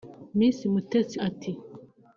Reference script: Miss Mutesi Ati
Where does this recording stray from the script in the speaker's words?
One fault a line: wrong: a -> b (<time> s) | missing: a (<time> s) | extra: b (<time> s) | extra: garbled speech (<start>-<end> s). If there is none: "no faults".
no faults